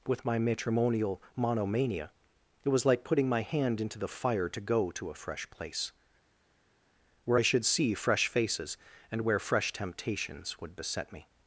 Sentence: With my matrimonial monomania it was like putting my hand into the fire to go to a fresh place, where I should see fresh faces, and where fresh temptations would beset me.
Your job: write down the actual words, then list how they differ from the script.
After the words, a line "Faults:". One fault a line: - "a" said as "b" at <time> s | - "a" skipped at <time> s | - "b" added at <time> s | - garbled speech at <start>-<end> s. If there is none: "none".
With my matrimonial monomania it was like putting my hand into the fire to go to a fresh place, where I should see fresh faces, and where fresh temptations would beset me.
Faults:
none